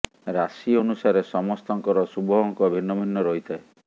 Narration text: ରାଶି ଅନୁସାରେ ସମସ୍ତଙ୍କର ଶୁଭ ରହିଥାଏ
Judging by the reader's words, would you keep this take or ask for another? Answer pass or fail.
fail